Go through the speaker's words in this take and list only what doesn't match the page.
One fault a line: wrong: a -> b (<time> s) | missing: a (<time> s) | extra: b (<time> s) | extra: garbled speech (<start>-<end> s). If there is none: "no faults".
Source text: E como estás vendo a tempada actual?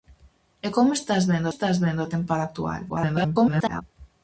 extra: estás vendo (1.5 s)
extra: garbled speech (2.9-3.8 s)